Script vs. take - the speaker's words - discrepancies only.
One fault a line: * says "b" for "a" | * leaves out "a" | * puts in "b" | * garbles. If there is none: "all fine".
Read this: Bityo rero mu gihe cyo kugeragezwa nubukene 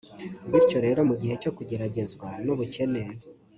all fine